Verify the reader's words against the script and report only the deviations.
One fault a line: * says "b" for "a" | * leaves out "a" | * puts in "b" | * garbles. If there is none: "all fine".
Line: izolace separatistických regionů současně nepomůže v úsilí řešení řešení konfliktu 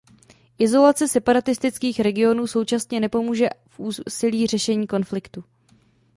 * leaves out "řešení"